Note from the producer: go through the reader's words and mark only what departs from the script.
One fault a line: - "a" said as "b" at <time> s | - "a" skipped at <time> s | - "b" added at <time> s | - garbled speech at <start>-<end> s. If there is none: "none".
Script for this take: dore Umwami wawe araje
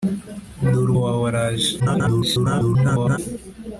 - "Umwami" skipped at 0.9 s
- garbled speech at 1.8-3.2 s